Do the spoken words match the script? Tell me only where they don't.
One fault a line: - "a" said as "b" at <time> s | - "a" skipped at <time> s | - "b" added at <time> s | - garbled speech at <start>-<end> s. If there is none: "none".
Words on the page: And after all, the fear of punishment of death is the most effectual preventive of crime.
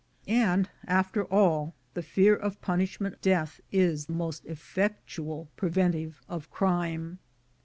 - "of" skipped at 3.1 s
- "the" skipped at 4.1 s